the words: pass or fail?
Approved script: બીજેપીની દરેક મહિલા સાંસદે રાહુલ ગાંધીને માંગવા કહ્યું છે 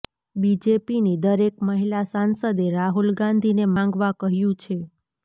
pass